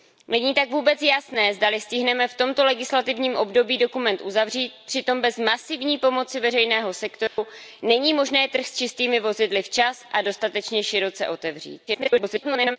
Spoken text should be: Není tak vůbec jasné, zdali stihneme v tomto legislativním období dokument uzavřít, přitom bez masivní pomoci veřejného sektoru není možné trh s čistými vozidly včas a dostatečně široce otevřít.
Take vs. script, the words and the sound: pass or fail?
fail